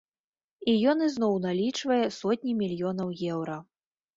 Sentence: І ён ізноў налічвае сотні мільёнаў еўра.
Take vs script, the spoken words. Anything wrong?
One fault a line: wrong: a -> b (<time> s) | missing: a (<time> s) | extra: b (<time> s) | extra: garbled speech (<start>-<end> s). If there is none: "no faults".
no faults